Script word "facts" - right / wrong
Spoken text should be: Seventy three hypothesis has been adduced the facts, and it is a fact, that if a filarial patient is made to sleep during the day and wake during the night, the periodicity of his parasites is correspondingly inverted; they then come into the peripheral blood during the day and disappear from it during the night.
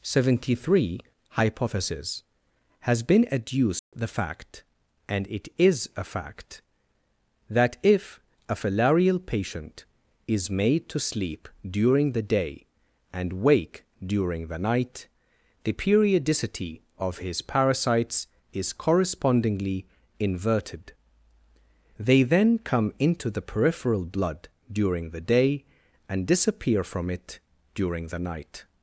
wrong